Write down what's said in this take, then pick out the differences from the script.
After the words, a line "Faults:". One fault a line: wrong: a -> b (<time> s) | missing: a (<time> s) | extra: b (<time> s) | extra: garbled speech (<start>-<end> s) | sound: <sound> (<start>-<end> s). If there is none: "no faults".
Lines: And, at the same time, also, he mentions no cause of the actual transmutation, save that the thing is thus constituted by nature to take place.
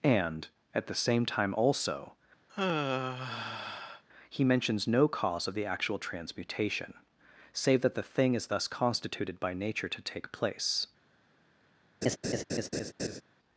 And, at the same time, also, he mentions no cause of the actual transmutation, save that the thing is thus constituted by nature to take place.
Faults:
sound: sigh (2.5-4.0 s)
sound: laugh (12.0-13.2 s)